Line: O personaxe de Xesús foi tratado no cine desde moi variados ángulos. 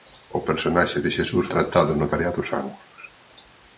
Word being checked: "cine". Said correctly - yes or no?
no